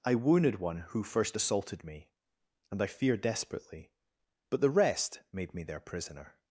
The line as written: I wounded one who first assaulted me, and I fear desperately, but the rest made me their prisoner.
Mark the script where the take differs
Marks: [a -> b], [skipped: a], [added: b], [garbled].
I wounded one who first assaulted me, and I fear desperately, but the rest made me their prisoner.